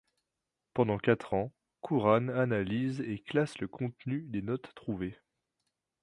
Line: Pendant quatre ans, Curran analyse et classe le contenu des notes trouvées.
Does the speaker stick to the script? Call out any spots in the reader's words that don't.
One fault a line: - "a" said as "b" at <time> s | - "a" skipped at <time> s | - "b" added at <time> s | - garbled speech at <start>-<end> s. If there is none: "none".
none